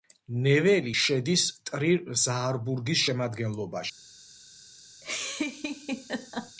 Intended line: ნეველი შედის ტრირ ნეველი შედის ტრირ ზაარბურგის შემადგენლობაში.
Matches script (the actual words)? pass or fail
fail